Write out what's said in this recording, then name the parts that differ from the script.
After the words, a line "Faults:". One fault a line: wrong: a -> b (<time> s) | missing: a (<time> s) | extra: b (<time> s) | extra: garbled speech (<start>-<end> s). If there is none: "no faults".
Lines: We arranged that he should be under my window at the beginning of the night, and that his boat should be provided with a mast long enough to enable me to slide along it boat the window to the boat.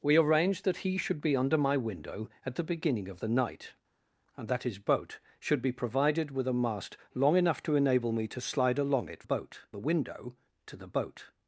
We arranged that he should be under my window at the beginning of the night, and that his boat should be provided with a mast long enough to enable me to slide along it boat the window to the boat.
Faults:
no faults